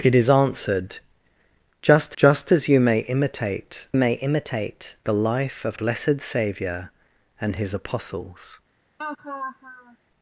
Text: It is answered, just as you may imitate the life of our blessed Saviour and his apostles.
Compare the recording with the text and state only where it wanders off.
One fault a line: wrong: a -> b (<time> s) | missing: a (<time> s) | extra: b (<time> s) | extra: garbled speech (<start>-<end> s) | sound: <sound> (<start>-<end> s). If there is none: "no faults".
extra: just (2.2 s)
extra: may imitate (3.9 s)
missing: our (5.8 s)
sound: laugh (9.0-10.0 s)